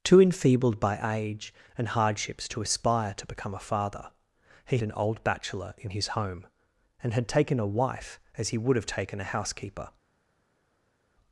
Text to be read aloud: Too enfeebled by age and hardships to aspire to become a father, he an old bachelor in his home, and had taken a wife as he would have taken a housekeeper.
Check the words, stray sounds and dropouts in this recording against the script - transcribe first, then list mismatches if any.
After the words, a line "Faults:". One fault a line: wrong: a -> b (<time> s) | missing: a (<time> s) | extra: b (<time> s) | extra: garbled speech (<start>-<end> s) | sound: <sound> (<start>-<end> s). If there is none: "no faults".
Too enfeebled by age and hardships to aspire to become a father, he an old bachelor in his home, and had taken a wife as he would have taken a housekeeper.
Faults:
no faults